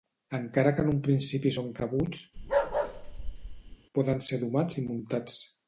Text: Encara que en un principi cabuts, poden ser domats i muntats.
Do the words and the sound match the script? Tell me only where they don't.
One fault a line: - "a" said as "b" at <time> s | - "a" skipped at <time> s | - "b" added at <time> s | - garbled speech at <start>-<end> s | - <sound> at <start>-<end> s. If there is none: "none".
- "són" added at 1.6 s
- bark at 2.4-3.8 s